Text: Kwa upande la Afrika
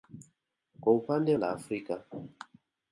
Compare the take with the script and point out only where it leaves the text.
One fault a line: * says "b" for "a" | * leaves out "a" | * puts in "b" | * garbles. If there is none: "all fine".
all fine